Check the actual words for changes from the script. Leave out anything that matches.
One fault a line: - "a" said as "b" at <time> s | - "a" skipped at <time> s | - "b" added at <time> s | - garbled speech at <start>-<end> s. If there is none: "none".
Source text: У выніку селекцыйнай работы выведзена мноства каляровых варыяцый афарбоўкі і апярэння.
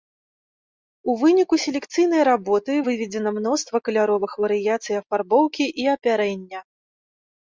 none